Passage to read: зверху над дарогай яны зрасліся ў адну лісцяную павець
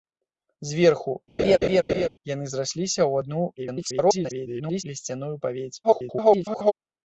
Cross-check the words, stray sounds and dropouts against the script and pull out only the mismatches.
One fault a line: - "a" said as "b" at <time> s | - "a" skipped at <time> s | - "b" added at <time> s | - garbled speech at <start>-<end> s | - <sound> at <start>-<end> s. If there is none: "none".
- "над дарогай" skipped at 1.1 s
- laugh at 1.4-2.1 s
- garbled speech at 3.6-4.8 s
- garbled speech at 5.8-6.7 s